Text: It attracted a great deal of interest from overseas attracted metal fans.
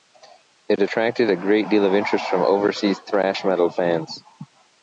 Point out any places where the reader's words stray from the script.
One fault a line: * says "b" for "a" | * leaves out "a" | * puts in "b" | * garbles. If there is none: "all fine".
* says "thrash" for "attracted"